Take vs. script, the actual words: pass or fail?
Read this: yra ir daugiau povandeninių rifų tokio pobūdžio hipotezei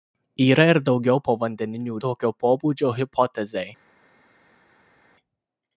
fail